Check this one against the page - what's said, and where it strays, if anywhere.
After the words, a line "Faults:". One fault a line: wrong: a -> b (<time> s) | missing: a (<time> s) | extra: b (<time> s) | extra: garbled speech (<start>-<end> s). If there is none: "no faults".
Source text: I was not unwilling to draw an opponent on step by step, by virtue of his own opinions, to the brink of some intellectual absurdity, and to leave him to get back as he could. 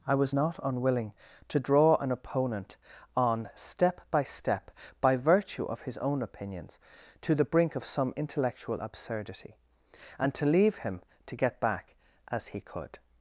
I was not unwilling to draw an opponent on step by step, by virtue of his own opinions, to the brink of some intellectual absurdity, and to leave him to get back as he could.
Faults:
no faults